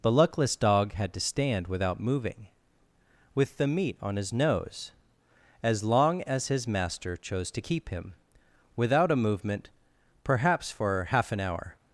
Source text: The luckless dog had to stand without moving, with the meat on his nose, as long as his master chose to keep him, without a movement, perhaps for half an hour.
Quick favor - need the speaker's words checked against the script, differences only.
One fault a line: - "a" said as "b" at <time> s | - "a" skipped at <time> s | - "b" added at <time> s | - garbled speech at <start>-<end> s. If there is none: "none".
none